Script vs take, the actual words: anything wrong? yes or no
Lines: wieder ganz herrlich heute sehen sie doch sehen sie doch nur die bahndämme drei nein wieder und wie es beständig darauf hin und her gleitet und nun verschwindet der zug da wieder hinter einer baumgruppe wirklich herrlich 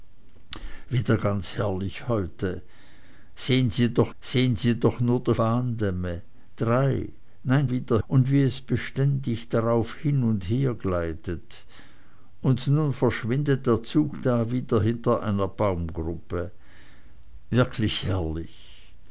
no